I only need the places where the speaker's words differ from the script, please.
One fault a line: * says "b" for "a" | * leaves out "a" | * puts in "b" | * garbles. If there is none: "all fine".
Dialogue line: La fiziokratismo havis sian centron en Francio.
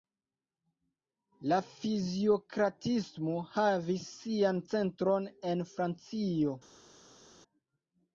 all fine